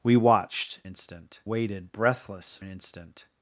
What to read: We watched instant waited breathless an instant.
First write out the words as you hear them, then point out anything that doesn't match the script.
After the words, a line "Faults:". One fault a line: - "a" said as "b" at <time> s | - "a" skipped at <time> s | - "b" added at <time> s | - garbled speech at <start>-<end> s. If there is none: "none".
We watched instant waited breathless an instant.
Faults:
none